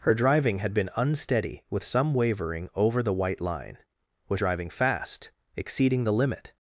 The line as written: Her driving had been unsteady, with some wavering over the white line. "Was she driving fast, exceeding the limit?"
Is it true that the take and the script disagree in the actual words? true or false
true